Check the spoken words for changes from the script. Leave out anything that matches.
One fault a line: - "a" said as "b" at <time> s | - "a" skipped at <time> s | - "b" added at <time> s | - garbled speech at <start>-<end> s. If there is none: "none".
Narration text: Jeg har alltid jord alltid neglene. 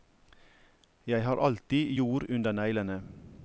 - "alltid" said as "under" at 2.3 s